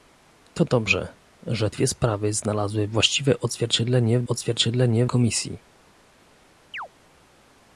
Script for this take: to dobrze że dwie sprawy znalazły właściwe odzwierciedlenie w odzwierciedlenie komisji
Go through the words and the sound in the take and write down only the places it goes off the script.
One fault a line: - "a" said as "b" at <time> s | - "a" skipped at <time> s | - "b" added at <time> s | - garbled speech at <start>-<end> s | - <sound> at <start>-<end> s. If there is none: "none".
- chirp at 6.7-6.9 s